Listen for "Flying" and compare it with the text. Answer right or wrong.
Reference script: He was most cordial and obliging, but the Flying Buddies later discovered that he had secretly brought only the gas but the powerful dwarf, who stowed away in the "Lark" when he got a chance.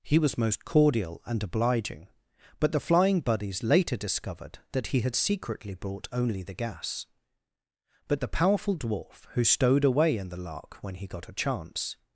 right